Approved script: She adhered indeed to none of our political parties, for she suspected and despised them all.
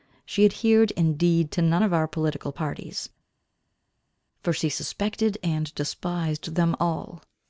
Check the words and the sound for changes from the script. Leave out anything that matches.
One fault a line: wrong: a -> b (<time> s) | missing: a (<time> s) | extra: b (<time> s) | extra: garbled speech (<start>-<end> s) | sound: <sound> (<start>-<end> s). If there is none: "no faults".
no faults